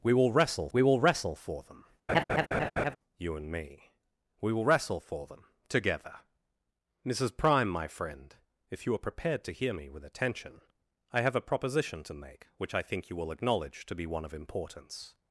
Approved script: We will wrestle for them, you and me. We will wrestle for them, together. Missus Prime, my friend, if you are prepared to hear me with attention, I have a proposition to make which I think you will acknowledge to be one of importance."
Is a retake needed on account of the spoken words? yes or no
yes